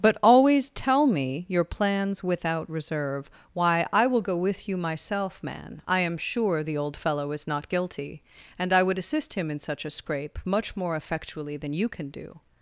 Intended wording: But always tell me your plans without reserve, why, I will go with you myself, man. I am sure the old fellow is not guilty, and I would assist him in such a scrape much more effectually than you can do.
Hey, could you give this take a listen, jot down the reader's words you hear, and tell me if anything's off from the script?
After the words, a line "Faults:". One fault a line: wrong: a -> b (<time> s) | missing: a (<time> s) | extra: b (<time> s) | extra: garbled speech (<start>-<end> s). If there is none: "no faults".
But always tell me your plans without reserve, why, I will go with you myself, man. I am sure the old fellow is not guilty, and I would assist him in such a scrape much more effectually than you can do.
Faults:
no faults